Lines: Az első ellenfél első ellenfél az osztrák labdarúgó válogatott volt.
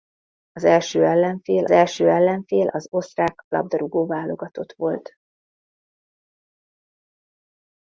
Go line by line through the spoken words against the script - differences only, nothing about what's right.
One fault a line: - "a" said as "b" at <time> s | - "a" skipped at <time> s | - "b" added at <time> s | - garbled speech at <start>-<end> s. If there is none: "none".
none